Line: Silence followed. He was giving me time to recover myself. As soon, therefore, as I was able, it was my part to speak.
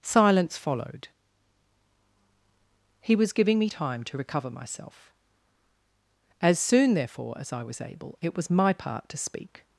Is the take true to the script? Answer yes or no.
yes